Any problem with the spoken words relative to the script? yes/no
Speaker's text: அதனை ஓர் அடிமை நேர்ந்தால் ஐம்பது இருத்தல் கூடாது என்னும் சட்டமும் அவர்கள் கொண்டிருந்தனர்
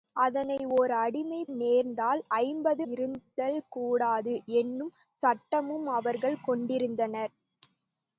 no